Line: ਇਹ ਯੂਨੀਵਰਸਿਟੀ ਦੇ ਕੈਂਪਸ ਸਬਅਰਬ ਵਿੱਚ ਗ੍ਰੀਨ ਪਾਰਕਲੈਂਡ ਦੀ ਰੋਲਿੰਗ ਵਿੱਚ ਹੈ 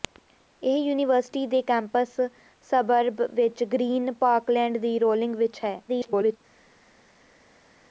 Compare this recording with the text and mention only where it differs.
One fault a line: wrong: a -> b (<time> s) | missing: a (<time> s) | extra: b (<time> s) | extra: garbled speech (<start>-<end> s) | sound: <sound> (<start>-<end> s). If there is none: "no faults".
extra: garbled speech (5.9-6.4 s)